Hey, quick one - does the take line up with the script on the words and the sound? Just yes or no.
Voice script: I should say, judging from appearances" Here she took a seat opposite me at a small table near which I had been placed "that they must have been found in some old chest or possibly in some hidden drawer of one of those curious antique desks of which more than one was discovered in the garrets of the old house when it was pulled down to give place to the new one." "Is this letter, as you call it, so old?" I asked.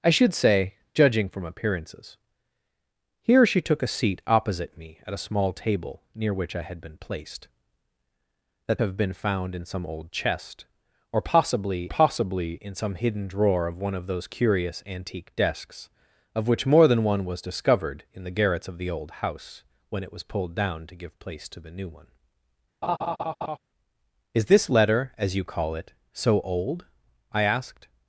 no